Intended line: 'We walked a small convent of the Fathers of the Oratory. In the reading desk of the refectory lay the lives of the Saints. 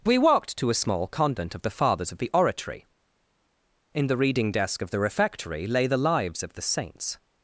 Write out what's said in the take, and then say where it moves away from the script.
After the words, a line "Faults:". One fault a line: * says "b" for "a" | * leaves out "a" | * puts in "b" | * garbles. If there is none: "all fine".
'We walked to a small convent of the Fathers of the Oratory. In the reading desk of the refectory lay the lives of the Saints.
Faults:
* puts in "to"